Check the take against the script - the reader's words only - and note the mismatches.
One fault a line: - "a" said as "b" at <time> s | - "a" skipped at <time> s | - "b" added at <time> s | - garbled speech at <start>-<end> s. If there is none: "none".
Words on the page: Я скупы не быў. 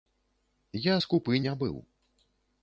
none